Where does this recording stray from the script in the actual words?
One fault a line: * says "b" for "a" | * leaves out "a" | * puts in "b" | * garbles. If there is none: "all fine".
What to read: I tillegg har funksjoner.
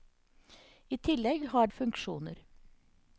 all fine